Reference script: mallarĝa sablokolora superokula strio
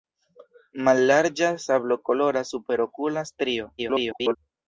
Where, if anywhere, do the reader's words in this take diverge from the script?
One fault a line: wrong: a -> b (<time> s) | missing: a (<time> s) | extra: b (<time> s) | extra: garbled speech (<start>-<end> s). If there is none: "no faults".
extra: garbled speech (3.8-4.4 s)